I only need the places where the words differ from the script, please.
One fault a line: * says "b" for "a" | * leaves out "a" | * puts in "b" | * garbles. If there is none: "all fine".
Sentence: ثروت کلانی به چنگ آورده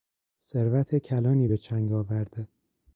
all fine